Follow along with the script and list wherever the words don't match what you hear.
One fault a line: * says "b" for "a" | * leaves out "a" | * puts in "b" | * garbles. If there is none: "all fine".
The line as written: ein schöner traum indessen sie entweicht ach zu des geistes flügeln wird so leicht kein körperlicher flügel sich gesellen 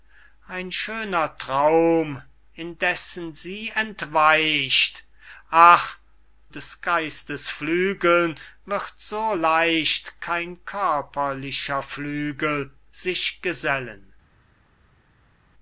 * leaves out "zu"